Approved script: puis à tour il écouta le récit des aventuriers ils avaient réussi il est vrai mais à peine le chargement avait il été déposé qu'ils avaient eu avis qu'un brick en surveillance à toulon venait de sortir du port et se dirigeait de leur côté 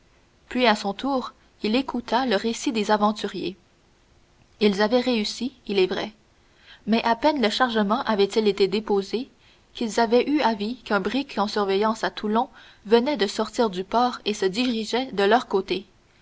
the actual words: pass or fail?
fail